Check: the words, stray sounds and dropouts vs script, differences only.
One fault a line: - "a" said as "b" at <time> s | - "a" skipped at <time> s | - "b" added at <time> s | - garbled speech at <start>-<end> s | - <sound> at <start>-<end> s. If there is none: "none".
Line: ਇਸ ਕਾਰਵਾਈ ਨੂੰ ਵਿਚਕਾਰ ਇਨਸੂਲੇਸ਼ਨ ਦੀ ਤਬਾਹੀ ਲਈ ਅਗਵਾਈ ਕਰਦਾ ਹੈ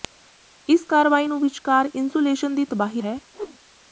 - "ਲਈ ਅਗਵਾਈ ਕਰਦਾ" skipped at 3.0 s
- whoosh at 3.3-3.6 s